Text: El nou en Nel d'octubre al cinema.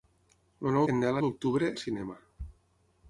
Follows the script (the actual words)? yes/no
yes